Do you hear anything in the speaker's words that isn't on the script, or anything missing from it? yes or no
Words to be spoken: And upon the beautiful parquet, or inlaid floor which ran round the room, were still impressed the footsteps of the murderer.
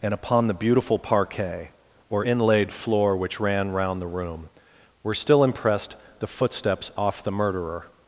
yes